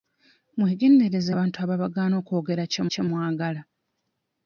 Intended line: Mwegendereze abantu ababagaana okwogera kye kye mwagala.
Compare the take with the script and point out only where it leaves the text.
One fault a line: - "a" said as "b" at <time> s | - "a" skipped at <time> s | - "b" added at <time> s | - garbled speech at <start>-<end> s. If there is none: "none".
none